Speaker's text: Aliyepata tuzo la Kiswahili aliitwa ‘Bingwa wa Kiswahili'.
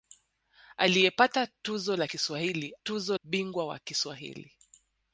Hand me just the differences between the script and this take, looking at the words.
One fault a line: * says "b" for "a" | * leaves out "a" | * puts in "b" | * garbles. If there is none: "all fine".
* says "tuzo" for "aliitwa"